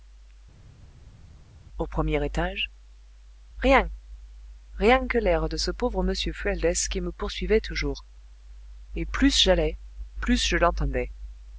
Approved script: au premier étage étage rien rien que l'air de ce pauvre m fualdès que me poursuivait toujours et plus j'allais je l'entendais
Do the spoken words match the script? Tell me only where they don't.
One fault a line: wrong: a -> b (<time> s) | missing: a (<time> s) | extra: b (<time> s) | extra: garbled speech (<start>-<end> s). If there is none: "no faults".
missing: étage (2.7 s)
wrong: que -> qui (6.9 s)
extra: plus (10.2 s)